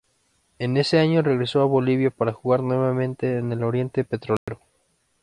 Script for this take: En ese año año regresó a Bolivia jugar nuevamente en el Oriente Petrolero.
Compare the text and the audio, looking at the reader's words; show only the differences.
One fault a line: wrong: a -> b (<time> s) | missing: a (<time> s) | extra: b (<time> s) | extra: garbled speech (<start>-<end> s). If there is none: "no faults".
missing: año (1.2 s)
extra: para (2.1 s)